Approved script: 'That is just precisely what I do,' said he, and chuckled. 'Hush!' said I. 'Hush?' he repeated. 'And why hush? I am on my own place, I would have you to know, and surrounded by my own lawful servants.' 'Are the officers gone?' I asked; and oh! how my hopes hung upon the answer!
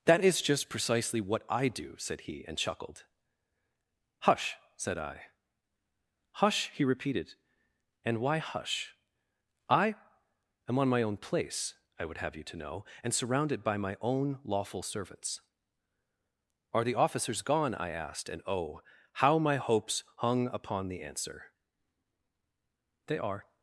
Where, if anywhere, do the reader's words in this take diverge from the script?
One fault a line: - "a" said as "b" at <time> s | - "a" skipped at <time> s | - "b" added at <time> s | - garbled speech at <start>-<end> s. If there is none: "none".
- "They are" added at 23.1 s